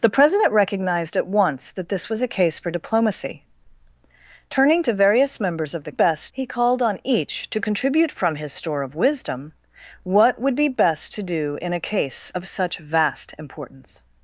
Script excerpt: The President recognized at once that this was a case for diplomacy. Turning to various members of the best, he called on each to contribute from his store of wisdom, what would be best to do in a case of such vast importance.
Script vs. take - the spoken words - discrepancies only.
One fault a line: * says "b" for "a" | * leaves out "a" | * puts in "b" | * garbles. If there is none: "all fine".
all fine